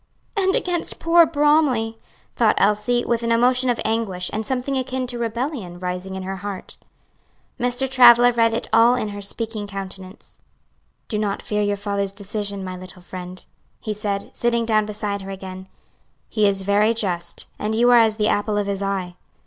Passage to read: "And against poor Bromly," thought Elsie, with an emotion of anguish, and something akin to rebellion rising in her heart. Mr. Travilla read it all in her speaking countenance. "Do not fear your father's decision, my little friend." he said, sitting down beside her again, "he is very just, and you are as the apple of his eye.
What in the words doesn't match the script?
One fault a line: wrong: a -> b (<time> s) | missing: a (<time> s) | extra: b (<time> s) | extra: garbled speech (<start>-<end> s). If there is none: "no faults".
no faults